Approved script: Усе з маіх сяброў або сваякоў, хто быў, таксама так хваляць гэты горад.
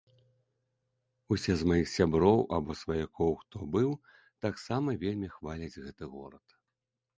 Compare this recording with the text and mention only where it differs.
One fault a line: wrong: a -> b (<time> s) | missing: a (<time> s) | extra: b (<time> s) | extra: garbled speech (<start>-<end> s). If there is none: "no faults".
wrong: так -> вельмі (5.1 s)